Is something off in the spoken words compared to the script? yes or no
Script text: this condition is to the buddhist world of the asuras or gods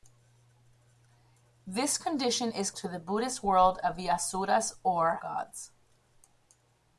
no